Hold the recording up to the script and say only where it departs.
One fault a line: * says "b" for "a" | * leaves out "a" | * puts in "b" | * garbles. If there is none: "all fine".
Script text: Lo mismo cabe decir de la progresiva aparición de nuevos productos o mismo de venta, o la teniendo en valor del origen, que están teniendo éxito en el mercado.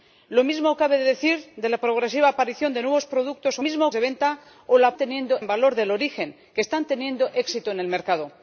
all fine